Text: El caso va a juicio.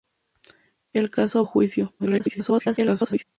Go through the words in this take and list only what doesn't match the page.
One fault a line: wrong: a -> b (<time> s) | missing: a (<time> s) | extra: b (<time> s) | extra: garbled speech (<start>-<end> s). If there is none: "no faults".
missing: va (1.4 s)
extra: garbled speech (2.0-3.2 s)